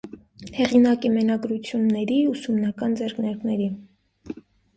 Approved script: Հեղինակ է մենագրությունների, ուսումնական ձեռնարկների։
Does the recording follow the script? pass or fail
pass